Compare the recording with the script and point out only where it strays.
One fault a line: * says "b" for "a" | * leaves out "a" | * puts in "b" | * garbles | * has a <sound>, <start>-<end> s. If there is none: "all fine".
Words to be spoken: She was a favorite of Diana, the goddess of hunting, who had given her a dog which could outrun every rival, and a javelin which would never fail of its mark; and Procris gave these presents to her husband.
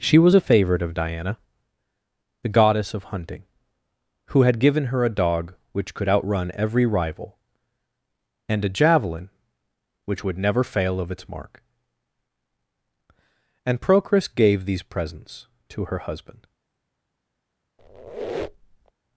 * has a squeak, 17.8-18.9 s